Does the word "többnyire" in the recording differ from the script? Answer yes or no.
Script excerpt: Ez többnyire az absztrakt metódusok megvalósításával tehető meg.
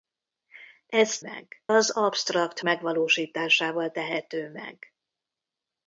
yes